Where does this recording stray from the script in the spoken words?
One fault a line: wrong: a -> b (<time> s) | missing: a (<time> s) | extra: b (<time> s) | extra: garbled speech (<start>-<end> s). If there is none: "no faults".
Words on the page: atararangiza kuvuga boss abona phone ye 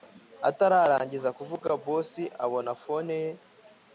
no faults